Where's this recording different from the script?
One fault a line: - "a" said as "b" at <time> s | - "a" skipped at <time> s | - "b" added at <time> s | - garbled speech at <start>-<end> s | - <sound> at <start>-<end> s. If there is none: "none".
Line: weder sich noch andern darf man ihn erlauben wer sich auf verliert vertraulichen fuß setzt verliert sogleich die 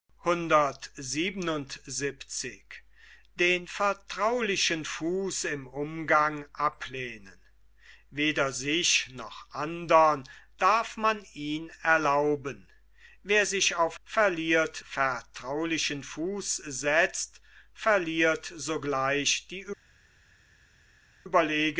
none